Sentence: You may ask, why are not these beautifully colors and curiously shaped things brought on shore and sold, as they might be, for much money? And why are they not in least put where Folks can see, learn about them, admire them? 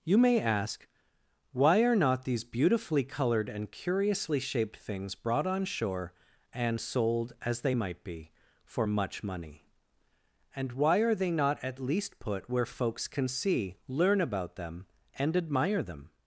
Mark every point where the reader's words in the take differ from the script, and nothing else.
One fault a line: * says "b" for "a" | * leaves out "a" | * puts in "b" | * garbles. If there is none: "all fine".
* says "colored" for "colors"
* says "at" for "in"
* puts in "and"